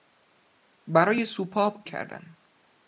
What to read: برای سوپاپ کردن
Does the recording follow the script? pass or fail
pass